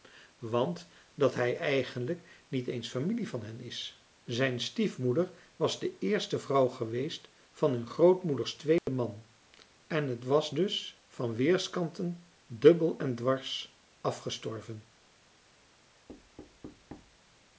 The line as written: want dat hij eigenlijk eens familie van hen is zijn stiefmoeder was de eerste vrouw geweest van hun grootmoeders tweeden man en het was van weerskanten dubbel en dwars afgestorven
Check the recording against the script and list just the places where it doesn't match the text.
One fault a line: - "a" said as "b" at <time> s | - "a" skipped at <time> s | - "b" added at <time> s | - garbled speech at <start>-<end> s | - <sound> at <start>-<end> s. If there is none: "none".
- "niet" added at 2.5 s
- dropout at 8.8-8.9 s
- "dus" added at 10.5 s
- thud at 16.1-17.2 s